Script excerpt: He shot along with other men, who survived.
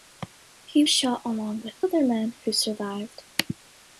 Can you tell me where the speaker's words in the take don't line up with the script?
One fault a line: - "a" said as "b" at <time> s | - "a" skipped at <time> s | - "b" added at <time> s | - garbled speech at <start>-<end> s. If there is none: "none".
none